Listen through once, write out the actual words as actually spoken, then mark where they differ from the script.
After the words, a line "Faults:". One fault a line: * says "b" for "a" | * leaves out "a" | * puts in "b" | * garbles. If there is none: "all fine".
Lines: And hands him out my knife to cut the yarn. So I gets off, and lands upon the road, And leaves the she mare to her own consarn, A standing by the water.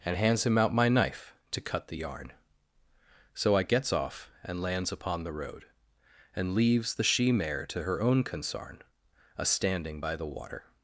And hands him out my knife to cut the yarn. So I gets off, and lands upon the road, And leaves the she mare to her own consarn, A standing by the water.
Faults:
all fine